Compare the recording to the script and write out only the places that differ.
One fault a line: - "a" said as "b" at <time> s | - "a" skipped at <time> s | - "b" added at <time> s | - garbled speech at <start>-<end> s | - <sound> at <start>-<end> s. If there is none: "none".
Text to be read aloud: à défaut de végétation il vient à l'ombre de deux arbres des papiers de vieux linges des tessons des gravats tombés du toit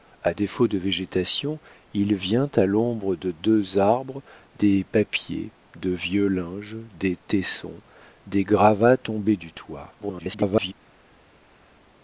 - garbled speech at 10.0-10.7 s